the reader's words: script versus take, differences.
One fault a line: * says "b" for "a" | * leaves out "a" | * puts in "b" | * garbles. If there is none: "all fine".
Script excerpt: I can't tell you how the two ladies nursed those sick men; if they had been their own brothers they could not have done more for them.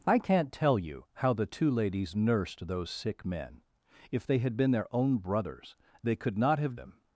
* leaves out "done more for"